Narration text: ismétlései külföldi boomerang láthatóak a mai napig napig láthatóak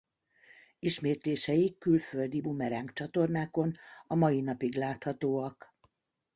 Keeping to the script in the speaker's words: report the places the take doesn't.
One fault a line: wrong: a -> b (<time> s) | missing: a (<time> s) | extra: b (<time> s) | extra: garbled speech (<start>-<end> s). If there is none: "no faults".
wrong: láthatóak -> csatornákon (2.9 s)
missing: napig (4.7 s)